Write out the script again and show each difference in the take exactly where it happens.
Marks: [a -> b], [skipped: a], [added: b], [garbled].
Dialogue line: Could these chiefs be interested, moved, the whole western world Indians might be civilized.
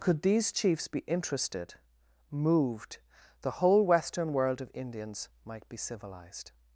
Could these chiefs be interested, moved, the whole western world [added: of] Indians might be civilized.